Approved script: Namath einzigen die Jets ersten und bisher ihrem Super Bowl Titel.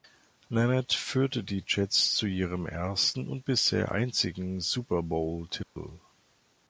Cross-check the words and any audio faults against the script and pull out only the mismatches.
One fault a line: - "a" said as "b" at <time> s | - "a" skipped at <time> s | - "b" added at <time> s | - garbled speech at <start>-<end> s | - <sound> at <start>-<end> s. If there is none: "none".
- "einzigen" said as "führte" at 0.9 s
- "zu ihrem" added at 2.1 s
- "ihrem" said as "einzigen" at 3.9 s
- dropout at 5.6-5.8 s